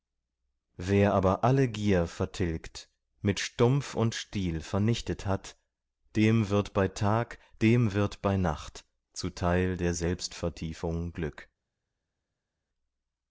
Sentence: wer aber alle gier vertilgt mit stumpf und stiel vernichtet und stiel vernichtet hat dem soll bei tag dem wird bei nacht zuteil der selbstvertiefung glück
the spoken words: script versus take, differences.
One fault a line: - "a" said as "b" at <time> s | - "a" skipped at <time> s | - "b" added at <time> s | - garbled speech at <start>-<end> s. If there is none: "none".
- "und stiel vernichtet" skipped at 5.3 s
- "soll" said as "wird" at 6.5 s